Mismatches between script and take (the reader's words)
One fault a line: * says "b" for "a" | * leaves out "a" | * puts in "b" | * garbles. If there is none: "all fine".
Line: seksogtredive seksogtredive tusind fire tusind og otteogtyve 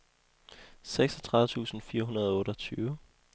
* leaves out "seksogtredive"
* says "hundrede" for "tusind"